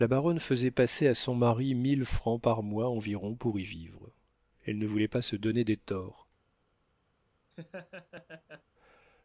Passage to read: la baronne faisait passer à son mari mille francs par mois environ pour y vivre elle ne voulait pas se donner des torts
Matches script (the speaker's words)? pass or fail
pass